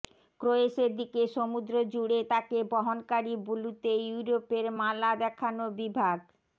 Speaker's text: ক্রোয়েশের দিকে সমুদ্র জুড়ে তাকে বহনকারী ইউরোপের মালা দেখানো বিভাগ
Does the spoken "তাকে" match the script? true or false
true